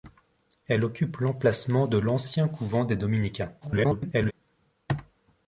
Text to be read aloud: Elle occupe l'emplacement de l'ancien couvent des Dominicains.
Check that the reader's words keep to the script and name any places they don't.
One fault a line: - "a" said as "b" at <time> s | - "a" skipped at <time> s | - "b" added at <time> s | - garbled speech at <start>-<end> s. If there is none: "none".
- garbled speech at 3.6-4.3 s